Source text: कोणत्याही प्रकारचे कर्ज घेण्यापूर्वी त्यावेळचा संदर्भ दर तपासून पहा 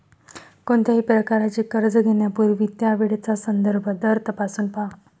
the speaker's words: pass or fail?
pass